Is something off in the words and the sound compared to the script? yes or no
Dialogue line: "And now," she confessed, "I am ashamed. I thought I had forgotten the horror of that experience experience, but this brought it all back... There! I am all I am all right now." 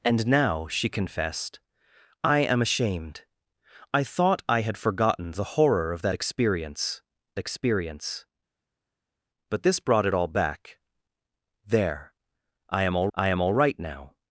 no